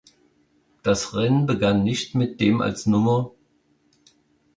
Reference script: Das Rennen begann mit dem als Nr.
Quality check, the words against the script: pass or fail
fail